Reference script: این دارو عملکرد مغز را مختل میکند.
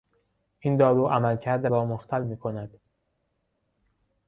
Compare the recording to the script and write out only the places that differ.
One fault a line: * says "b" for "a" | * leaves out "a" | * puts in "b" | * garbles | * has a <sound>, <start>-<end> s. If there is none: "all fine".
* leaves out "مغز"